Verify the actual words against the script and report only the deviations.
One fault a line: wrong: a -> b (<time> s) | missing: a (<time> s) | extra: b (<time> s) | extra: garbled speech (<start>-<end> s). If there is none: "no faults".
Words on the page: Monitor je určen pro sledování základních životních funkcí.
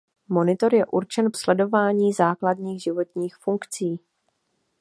missing: pro (1.3 s)